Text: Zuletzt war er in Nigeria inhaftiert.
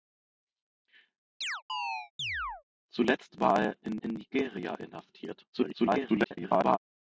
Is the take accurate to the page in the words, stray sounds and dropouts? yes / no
no